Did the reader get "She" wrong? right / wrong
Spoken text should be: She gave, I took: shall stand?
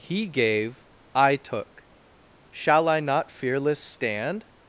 wrong